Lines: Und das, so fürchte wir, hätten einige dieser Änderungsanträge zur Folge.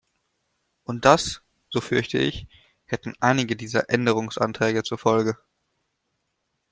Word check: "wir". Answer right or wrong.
wrong